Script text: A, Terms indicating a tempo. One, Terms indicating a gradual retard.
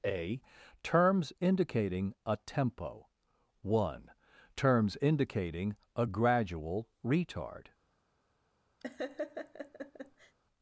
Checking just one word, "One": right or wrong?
right